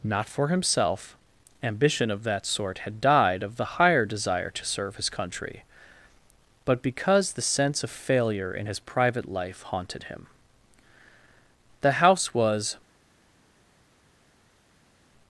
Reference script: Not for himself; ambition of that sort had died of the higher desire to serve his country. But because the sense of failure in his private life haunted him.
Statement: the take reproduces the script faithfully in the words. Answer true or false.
false